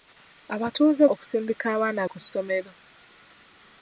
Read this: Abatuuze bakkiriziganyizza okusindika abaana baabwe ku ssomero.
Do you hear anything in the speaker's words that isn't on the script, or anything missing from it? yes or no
yes